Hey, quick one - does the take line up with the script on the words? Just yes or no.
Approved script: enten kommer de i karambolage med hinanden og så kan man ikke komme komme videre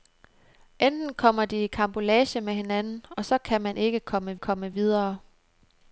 yes